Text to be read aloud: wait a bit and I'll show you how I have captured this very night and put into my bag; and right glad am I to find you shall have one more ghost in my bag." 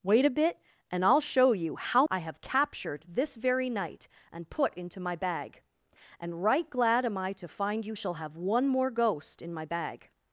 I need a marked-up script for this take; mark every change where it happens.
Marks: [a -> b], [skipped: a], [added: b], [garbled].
wait a bit and I'll show you how I have captured this very night and put into my bag; and right glad am I to find you shall have one more ghost in my bag."